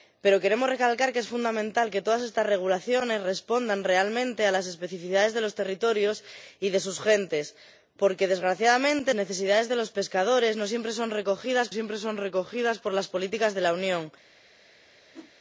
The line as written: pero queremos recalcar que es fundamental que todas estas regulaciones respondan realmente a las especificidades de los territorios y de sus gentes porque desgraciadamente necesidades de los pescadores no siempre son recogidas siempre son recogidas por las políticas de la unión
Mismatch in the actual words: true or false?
false